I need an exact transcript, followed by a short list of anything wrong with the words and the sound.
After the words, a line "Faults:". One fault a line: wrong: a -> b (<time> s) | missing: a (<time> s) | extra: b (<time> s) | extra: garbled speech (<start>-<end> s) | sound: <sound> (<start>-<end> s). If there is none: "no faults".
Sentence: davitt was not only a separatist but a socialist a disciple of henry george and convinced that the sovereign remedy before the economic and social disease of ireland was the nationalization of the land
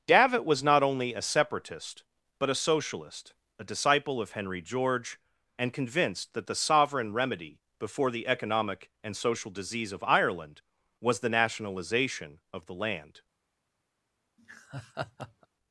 davitt was not only a separatist but a socialist a disciple of henry george and convinced that the sovereign remedy before the economic and social disease of ireland was the nationalization of the land
Faults:
sound: laugh (14.4-15.5 s)